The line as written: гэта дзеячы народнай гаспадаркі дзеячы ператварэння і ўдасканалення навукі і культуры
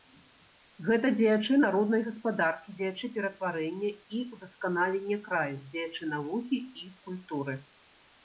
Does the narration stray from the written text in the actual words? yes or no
yes